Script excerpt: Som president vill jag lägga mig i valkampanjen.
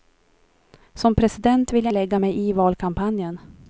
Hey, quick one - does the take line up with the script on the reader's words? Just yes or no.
yes